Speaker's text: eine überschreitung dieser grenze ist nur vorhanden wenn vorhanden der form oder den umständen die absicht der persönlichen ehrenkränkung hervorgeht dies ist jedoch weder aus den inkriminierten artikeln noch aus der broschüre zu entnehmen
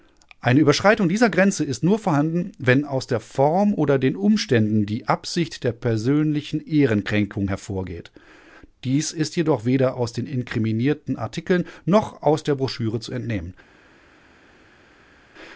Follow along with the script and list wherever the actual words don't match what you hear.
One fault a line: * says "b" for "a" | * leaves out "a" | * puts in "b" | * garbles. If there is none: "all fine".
* says "aus" for "vorhanden"